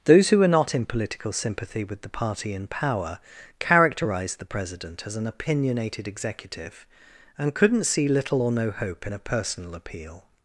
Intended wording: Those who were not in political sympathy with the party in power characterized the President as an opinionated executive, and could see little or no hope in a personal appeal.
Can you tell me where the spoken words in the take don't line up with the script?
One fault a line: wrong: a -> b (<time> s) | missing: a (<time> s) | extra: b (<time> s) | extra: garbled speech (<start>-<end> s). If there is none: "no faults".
wrong: could -> couldn't (7.5 s)